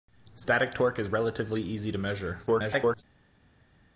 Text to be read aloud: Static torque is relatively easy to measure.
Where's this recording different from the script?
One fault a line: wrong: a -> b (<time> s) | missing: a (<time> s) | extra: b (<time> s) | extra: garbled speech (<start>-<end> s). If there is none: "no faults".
extra: garbled speech (2.5-3.0 s)